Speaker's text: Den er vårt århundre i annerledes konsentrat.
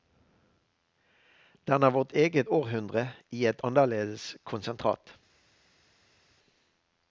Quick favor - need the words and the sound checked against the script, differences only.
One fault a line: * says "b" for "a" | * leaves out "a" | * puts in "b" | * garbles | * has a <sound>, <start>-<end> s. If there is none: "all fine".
* puts in "eget"
* puts in "et"